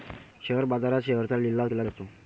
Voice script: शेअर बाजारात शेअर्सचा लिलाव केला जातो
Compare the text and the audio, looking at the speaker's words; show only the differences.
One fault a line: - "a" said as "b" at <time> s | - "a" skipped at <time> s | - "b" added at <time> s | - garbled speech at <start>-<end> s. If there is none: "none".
none